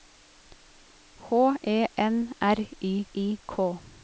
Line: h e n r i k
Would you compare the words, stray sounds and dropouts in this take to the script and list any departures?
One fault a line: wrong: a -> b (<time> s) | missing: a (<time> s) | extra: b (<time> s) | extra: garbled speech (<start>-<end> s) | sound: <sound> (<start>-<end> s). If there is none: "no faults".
extra: i (3.1 s)